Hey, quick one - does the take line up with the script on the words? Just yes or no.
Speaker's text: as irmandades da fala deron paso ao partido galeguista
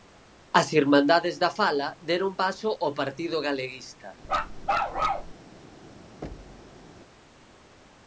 yes